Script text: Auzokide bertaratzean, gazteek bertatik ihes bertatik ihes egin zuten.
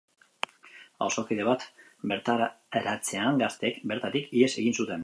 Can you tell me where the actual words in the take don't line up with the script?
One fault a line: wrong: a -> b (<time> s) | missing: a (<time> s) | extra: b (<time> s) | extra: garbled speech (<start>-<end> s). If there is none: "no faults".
extra: bat (1.5 s)
missing: bertatik ihes (4.5 s)